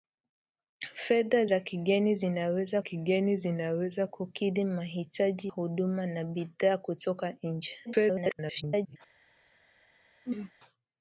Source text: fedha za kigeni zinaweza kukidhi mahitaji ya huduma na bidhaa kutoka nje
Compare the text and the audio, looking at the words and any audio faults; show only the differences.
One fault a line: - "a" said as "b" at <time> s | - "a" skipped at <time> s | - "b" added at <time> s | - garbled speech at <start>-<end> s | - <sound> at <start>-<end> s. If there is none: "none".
- "kigeni zinaweza" added at 2.8 s
- "ya" skipped at 5.5 s
- garbled speech at 7.9-9.0 s
- throat clearing at 10.2-10.5 s